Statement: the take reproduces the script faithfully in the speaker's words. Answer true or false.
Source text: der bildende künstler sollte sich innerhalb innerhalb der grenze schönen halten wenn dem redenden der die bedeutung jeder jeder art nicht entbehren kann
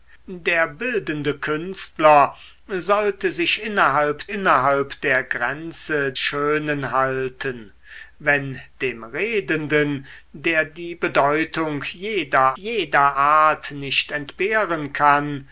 true